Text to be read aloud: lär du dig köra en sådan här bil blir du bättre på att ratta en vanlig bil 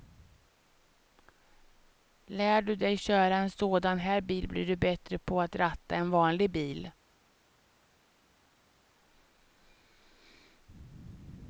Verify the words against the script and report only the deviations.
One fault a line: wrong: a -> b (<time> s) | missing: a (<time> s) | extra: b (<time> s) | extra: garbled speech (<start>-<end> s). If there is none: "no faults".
no faults